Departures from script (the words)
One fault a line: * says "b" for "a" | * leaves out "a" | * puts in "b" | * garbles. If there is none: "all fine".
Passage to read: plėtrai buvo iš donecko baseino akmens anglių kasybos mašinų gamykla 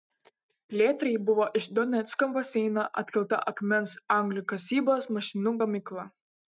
* puts in "atkelta"